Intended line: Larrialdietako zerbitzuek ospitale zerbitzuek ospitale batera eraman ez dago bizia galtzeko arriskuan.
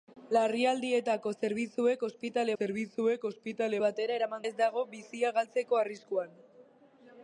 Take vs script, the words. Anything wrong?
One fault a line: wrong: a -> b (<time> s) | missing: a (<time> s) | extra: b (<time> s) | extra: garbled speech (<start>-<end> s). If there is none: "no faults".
no faults